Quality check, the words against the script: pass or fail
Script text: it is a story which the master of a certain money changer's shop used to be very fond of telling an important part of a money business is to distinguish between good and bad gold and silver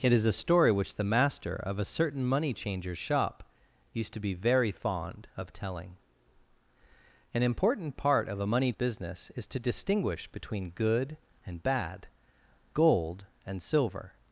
pass